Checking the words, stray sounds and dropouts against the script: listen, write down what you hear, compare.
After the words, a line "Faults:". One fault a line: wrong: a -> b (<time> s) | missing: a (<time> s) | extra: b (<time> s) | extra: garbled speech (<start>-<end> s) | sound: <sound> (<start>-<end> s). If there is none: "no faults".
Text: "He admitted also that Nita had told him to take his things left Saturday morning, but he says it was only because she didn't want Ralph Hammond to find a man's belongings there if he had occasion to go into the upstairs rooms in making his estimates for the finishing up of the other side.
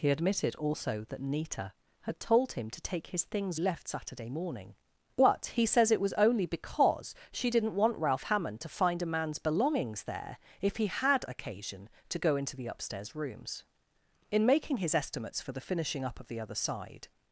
"He admitted also that Nita had told him to take his things left Saturday morning, but he says it was only because she didn't want Ralph Hammond to find a man's belongings there if he had occasion to go into the upstairs rooms in making his estimates for the finishing up of the other side.
Faults:
no faults